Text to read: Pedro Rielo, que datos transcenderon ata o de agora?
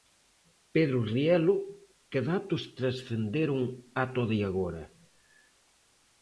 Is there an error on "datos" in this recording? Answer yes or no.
no